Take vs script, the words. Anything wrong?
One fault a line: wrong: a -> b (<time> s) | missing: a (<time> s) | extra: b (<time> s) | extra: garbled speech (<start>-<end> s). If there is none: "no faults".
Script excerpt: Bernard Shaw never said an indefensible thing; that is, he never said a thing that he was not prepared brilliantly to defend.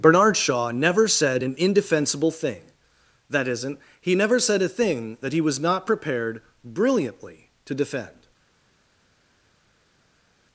wrong: is -> isn't (3.5 s)